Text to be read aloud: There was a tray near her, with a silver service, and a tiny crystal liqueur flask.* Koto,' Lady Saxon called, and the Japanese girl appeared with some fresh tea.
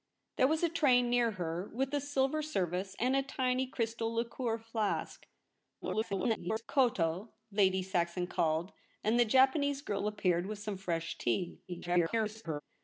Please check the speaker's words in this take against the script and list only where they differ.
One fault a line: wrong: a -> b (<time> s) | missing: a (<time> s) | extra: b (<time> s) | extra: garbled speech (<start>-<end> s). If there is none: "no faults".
extra: garbled speech (5.8-6.6 s)
extra: garbled speech (11.7-12.6 s)